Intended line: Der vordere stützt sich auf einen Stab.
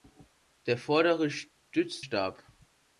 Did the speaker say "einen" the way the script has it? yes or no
no